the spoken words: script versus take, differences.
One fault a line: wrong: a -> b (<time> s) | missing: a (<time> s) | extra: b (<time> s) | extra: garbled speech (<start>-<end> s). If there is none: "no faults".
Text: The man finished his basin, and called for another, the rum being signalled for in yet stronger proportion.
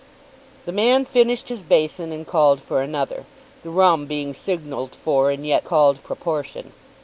wrong: stronger -> called (5.6 s)